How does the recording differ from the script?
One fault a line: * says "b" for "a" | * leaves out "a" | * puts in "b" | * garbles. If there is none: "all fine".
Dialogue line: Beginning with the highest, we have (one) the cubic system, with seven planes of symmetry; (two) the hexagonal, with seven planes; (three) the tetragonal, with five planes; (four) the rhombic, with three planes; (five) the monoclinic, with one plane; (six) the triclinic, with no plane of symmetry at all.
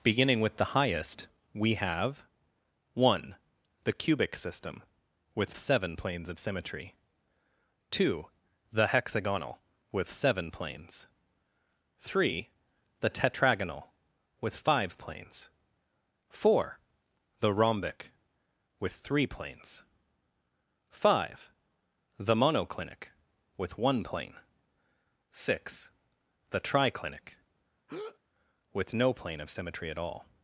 all fine